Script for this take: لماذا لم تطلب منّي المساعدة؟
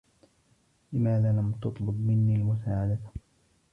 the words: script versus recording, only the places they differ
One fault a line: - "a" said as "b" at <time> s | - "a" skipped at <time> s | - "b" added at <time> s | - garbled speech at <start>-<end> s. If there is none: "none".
none